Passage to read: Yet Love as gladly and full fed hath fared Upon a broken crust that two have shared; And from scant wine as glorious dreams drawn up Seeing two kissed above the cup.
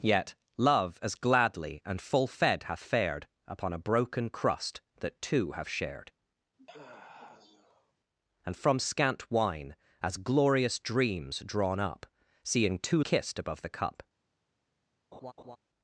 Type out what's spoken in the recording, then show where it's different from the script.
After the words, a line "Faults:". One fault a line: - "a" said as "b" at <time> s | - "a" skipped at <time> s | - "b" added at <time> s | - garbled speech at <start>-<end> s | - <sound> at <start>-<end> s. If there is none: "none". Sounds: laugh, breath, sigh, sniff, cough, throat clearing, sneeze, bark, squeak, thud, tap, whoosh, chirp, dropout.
Yet Love as gladly and full fed hath fared Upon a broken crust that two have shared; And from scant wine as glorious dreams drawn up Seeing two kissed above the cup.
Faults:
- sigh at 6.6-7.9 s
- laugh at 15.1-15.6 s